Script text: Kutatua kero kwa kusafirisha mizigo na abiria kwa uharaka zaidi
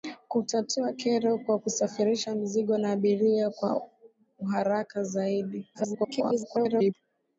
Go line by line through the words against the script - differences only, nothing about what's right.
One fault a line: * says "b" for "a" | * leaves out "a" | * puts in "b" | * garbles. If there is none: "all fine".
* garbles